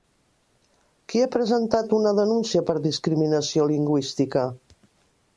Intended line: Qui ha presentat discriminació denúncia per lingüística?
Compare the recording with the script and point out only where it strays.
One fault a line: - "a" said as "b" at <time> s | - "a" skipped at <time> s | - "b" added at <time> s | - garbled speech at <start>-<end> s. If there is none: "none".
- "discriminació" said as "una" at 2.0 s
- "discriminació" added at 2.8 s